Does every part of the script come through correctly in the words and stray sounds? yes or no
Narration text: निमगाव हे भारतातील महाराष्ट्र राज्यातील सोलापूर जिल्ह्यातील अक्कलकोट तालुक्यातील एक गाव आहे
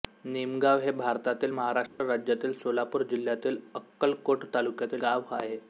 no